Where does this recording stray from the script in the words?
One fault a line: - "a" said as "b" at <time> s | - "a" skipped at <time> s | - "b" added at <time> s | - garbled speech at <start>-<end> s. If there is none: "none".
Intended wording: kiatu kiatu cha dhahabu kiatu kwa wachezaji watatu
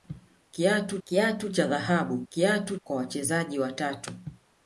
none